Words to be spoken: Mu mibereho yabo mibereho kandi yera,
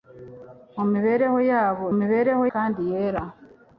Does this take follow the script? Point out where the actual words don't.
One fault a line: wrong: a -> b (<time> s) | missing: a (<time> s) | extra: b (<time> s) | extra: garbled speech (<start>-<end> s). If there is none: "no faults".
no faults